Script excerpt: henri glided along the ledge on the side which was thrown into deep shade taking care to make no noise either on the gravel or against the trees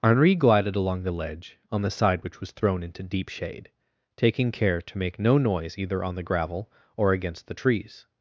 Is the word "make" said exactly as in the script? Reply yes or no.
yes